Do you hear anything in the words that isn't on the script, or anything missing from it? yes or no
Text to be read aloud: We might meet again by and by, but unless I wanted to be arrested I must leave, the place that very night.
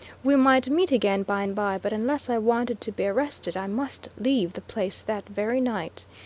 no